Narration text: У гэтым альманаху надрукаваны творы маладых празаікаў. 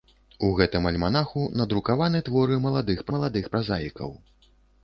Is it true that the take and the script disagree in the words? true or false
true